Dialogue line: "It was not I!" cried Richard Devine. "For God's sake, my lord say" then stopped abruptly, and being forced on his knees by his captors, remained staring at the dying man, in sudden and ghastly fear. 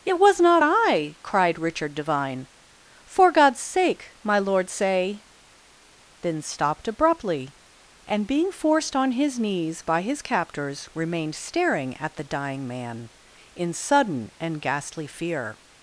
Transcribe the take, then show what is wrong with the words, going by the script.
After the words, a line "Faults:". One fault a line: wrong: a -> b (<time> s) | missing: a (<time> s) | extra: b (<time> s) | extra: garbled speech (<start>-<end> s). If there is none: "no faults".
"It was not I!" cried Richard Devine. "For God's sake, my lord say" then stopped abruptly, and being forced on his knees by his captors, remained staring at the dying man, in sudden and ghastly fear.
Faults:
no faults